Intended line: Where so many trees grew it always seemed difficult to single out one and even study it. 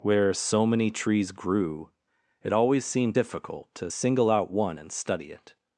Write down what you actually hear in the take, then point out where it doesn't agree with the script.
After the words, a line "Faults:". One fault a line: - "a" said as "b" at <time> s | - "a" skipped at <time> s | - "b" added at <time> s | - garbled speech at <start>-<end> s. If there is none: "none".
Where so many trees grew it always seemed difficult to single out one and study it.
Faults:
- "even" skipped at 4.9 s